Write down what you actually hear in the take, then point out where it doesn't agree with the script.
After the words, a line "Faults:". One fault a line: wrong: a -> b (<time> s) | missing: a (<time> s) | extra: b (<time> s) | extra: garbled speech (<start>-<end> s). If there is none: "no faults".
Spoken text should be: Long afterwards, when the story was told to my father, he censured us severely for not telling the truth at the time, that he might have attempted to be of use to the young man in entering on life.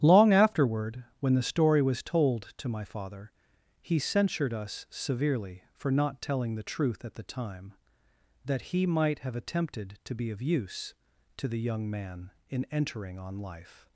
Long afterward, when the story was told to my father, he censured us severely for not telling the truth at the time, that he might have attempted to be of use to the young man in entering on life.
Faults:
wrong: afterwards -> afterward (0.3 s)